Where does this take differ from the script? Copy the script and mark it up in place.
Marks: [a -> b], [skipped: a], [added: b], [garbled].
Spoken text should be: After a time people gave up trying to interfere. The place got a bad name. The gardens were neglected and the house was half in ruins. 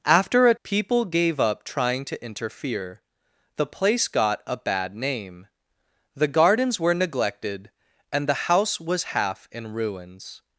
After a [skipped: time] people gave up trying to interfere. The place got a bad name. The gardens were neglected and the house was half in ruins.